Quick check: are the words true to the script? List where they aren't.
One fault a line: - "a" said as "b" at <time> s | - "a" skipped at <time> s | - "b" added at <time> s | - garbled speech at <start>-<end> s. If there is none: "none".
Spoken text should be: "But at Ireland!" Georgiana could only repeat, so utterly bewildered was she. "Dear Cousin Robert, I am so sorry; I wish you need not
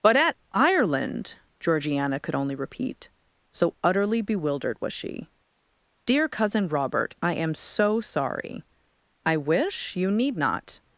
none